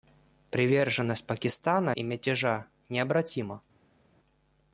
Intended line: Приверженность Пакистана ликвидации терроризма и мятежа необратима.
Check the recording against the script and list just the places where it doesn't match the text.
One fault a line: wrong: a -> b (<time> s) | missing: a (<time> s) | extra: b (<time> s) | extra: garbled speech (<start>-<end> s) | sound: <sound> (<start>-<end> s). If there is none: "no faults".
missing: ликвидации терроризма (1.9 s)